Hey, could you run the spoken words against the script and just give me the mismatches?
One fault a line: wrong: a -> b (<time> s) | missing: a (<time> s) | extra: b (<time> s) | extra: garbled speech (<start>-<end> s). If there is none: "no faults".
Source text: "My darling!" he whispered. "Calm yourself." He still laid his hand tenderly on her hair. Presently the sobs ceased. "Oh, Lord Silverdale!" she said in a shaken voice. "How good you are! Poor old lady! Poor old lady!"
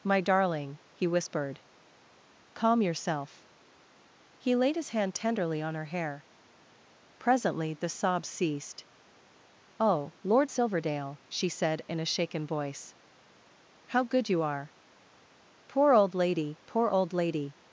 missing: still (4.5 s)